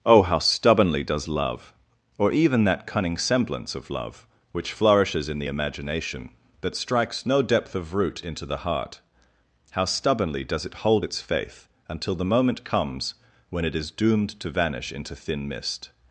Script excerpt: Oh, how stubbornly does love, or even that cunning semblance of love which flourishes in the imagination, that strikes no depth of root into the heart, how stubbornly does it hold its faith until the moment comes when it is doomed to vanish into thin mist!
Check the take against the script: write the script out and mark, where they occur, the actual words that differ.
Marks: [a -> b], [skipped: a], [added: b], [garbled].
Oh, how stubbornly does love, or even that cunning semblance of love which flourishes in the imagination, that strikes no depth of root into the heart, how stubbornly does it hold its faith until the moment comes when it is doomed to vanish into thin mist!